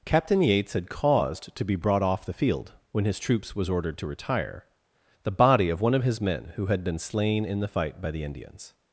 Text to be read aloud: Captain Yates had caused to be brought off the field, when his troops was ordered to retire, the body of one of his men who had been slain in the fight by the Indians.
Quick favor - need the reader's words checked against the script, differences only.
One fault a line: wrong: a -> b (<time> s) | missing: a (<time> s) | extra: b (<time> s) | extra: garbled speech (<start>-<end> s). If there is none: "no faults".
no faults